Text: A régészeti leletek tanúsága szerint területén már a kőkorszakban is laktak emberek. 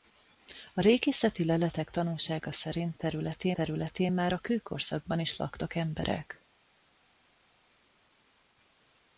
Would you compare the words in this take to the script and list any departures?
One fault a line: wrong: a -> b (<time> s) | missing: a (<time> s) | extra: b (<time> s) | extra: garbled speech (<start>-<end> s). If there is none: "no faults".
extra: területén (3.5 s)